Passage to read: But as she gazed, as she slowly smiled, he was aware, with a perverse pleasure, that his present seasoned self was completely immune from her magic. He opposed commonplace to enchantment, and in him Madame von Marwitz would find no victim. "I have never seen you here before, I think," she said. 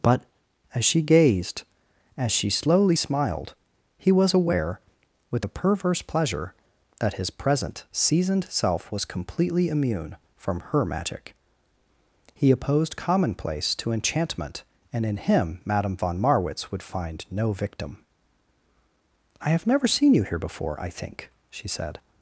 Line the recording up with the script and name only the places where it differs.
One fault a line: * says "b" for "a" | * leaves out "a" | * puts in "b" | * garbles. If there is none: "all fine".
all fine